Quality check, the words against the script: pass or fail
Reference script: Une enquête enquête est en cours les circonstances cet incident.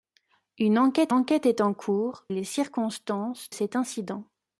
pass